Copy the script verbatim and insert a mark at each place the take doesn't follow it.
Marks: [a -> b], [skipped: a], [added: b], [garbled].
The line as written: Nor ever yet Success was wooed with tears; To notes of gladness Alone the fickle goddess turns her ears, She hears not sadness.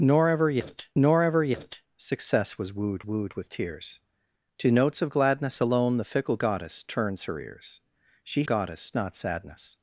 Nor ever yet [added: nor ever yet] Success was wooed [added: wooed] with tears; To notes of gladness Alone the fickle goddess turns her ears, She [hears -> goddess] not sadness.